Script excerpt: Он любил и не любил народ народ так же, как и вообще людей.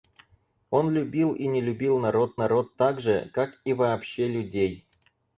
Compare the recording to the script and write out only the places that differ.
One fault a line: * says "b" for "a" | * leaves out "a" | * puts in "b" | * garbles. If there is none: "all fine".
all fine